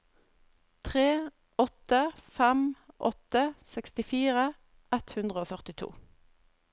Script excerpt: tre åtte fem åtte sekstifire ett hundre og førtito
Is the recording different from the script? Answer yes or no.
no